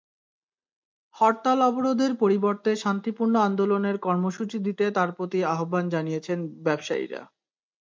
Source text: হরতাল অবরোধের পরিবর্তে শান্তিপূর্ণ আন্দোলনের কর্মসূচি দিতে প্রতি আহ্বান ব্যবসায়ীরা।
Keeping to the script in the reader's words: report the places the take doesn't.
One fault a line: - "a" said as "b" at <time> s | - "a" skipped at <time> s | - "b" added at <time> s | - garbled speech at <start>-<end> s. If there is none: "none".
- "তাঁর" added at 4.9 s
- "জানিয়েছেন" added at 5.9 s